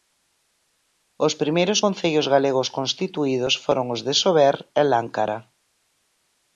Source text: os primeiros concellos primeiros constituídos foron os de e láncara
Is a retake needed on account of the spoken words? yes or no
yes